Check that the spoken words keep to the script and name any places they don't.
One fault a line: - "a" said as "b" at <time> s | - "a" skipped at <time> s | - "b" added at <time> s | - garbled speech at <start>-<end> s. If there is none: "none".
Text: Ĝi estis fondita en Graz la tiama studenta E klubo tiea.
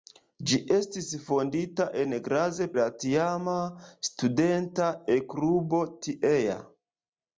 none